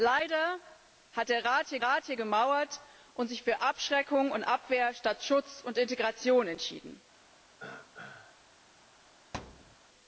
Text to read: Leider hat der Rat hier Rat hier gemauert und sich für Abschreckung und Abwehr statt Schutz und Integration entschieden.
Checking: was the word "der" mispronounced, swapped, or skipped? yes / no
no